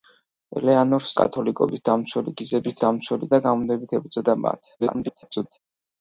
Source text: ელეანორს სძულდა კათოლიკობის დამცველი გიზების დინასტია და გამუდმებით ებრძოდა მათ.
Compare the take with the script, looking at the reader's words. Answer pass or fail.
fail